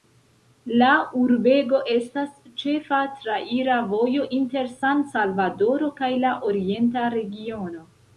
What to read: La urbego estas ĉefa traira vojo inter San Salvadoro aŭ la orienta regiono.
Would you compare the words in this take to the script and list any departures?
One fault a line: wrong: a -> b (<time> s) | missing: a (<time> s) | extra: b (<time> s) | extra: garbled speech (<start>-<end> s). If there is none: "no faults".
wrong: aŭ -> kaj (6.0 s)